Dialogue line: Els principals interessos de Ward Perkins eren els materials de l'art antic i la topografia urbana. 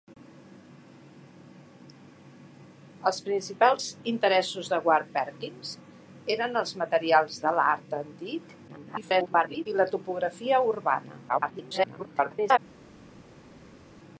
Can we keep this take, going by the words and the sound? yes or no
no